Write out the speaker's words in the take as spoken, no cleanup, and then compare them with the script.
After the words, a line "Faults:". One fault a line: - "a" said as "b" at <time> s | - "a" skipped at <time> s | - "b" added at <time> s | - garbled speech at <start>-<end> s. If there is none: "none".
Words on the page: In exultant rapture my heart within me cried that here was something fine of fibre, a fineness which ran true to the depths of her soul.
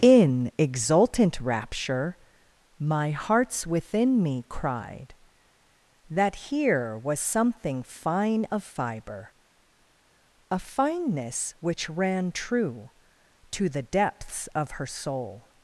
In exultant rapture my hearts within me cried that here was something fine of fibre, a fineness which ran true to the depths of her soul.
Faults:
- "heart" said as "hearts" at 3.1 s